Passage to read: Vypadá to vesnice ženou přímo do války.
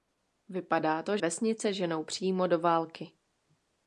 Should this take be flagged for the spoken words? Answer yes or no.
no